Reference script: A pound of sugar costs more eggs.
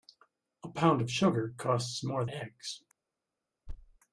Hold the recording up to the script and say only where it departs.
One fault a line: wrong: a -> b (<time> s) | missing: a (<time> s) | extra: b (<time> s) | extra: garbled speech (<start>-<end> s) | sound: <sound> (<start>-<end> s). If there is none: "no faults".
sound: thud (3.7-4.0 s)